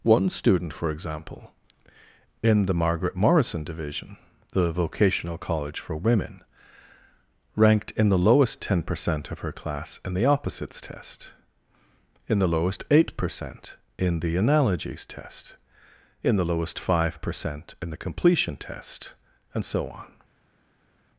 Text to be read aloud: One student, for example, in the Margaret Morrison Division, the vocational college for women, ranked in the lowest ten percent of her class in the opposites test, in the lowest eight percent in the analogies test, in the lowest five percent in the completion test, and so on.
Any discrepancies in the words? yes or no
no